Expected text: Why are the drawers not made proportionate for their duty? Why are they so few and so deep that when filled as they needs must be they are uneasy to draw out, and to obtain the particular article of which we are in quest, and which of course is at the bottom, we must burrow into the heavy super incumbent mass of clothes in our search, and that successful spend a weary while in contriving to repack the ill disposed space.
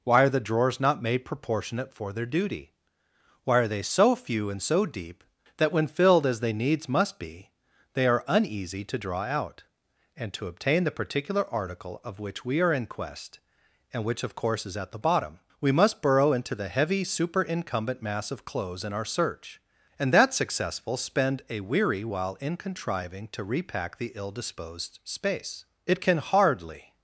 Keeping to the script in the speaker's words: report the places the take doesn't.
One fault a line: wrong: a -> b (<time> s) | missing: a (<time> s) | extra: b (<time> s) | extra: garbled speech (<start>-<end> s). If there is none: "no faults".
extra: It can hardly (25.9 s)